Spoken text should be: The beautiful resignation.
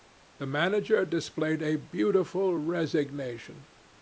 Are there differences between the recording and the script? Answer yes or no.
yes